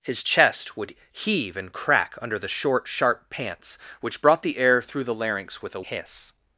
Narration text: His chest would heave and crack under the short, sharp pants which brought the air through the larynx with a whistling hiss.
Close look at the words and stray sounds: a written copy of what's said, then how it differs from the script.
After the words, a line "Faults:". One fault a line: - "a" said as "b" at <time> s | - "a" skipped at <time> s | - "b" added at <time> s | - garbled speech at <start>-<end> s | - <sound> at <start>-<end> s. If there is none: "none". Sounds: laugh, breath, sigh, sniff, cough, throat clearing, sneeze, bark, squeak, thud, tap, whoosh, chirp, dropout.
His chest would heave and crack under the short, sharp pants which brought the air through the larynx with a hiss.
Faults:
- "whistling" skipped at 5.8 s